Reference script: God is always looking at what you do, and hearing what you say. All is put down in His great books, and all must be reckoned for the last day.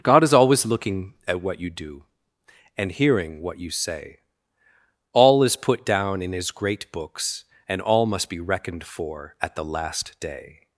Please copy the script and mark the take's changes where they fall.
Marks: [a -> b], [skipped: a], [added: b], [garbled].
God is always looking at what you do, and hearing what you say. All is put down in His great books, and all must be reckoned for [added: at] the last day.